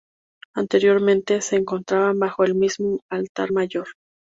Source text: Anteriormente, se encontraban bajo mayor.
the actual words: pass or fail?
fail